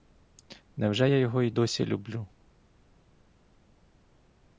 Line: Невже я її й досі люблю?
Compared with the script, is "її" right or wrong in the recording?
wrong